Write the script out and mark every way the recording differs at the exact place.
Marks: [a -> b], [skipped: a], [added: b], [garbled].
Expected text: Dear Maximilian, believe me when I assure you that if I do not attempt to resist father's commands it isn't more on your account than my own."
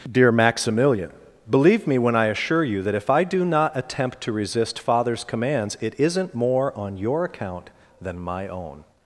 Dear Maximilian, believe me when I assure you that if I do not attempt to resist father's commands it isn't more on your account than my own."